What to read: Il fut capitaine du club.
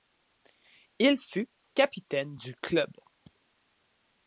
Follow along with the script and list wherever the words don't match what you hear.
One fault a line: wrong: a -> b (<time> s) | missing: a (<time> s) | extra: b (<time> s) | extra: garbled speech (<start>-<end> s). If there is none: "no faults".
no faults